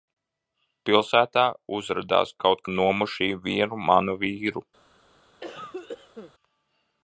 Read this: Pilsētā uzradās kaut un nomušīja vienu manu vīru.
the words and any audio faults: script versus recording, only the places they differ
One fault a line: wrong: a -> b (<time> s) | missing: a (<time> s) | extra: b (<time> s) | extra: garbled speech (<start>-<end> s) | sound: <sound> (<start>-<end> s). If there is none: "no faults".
sound: cough (5.4-6.3 s)